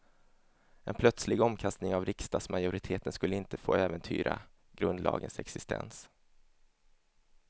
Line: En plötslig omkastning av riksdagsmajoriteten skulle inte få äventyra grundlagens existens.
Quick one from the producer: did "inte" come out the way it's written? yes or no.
yes